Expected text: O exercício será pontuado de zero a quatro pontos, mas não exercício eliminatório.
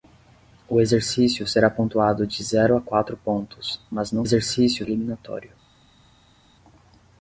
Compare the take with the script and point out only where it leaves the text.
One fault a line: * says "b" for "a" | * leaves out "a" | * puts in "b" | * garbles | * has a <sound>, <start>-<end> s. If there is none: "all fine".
all fine